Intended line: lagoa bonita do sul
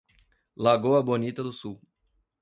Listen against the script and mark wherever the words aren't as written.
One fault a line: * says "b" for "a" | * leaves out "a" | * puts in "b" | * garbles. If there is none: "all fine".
all fine